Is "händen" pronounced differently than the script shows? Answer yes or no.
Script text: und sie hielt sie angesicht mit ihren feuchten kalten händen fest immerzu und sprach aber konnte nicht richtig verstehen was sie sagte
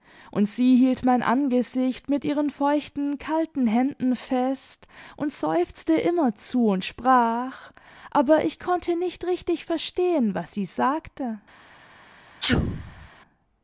no